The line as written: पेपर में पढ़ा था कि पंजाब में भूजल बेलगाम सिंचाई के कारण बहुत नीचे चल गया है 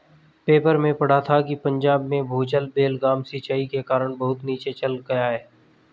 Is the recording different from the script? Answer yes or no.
no